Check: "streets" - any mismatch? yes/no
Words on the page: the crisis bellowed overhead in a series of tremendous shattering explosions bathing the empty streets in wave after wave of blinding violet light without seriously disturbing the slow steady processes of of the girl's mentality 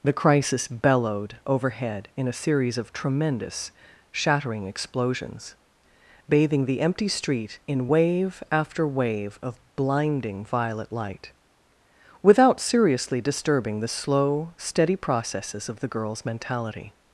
yes